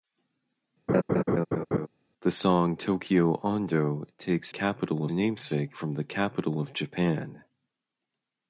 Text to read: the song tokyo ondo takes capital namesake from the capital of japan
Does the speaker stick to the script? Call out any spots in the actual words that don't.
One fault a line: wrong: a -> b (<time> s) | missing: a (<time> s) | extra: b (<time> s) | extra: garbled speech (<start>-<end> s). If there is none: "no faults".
no faults